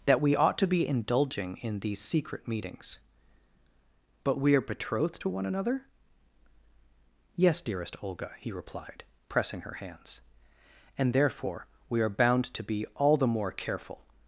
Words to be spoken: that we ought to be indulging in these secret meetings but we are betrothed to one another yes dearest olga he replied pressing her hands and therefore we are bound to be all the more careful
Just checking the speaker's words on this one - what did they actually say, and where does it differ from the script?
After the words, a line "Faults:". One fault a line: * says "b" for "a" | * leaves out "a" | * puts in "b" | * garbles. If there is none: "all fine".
that we ought to be indulging in these secret meetings but we are betrothed to one another yes dearest olga he replied pressing her hands and therefore we are bound to be all the more careful
Faults:
all fine